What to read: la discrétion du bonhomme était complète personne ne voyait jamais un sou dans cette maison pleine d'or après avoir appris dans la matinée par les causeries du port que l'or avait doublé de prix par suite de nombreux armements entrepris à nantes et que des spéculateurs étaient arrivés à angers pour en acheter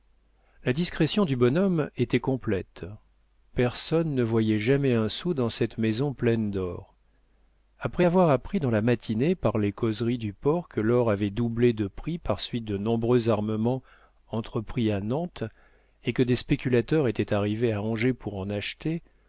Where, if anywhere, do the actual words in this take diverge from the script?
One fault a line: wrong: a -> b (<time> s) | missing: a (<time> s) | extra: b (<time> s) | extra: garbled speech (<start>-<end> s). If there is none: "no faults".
no faults